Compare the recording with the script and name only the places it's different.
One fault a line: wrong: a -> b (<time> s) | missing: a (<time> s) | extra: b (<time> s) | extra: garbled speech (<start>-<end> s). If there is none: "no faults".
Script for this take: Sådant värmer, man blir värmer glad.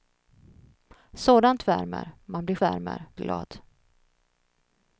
no faults